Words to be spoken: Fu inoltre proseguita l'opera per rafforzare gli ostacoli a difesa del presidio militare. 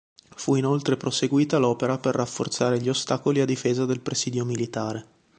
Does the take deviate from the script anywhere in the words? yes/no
no